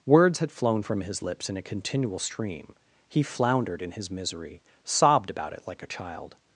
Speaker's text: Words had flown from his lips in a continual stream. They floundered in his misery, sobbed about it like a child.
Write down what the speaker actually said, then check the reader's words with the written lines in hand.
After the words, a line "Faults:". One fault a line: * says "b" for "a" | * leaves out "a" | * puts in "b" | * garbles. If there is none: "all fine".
Words had flown from his lips in a continual stream. He floundered in his misery, sobbed about it like a child.
Faults:
* says "He" for "They"